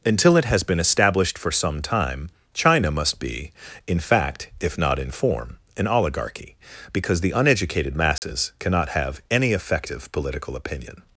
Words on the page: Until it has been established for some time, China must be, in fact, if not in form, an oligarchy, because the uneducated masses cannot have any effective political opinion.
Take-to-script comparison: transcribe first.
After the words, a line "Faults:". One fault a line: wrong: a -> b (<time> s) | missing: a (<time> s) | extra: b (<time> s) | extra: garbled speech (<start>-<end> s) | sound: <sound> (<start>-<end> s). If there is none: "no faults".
Until it has been established for some time, China must be, in fact, if not in form, an oligarchy, because the uneducated masses cannot have any effective political opinion.
Faults:
sound: dropout (8.2-8.2 s)